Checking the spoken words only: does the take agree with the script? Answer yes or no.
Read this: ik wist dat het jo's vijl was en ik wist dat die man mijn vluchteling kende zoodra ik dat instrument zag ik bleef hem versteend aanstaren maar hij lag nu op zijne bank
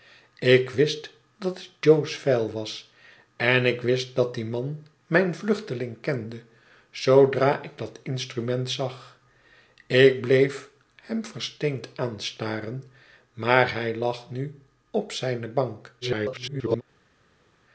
no